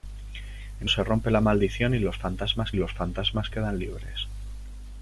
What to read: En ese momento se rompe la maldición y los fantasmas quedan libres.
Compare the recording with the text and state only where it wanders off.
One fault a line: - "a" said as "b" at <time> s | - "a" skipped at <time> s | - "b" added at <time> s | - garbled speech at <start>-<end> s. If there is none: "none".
- "ese momento" skipped at 0.9 s
- "los fantasmas" added at 2.8 s